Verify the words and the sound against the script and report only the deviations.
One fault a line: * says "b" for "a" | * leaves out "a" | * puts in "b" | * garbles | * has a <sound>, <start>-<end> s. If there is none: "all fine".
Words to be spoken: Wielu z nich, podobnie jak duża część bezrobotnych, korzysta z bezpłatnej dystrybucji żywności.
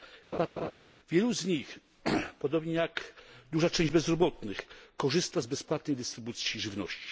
* has a laugh, 0.3-0.7 s